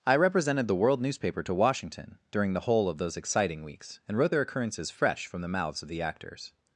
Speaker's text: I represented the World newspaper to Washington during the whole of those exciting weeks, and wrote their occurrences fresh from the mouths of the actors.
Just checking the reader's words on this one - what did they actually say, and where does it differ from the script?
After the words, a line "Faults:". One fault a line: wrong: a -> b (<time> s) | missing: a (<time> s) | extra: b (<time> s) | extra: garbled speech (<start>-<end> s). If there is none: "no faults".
I represented the World newspaper to Washington during the whole of those exciting weeks, and wrote their occurrences fresh from the mouths of the actors.
Faults:
no faults